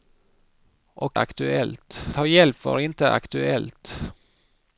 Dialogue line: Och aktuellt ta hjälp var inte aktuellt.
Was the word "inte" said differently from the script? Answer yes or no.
no